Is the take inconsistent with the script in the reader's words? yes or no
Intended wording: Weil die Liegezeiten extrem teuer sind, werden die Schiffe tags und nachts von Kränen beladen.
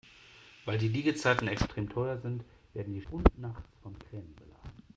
yes